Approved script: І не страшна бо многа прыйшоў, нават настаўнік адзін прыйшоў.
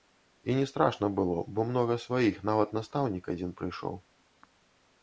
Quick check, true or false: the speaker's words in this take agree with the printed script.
false